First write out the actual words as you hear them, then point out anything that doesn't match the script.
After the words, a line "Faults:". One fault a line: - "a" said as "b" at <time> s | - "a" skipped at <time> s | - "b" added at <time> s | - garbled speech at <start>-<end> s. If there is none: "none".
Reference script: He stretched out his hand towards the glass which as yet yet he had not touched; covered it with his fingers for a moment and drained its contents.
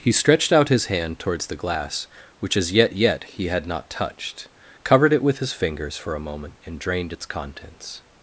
He stretched out his hand towards the glass which as yet yet he had not touched; covered it with his fingers for a moment and drained its contents.
Faults:
none